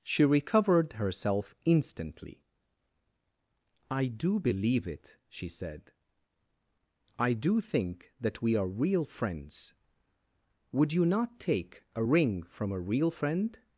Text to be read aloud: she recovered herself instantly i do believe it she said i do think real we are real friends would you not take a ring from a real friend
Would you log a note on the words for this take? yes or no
yes